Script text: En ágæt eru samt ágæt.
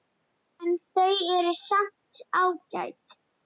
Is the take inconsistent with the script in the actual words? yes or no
yes